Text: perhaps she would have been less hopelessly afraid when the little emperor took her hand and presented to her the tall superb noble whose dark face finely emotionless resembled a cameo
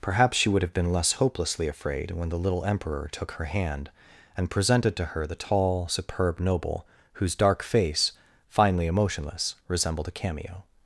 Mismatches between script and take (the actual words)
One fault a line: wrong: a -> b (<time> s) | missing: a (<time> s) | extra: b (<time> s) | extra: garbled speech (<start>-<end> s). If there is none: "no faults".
no faults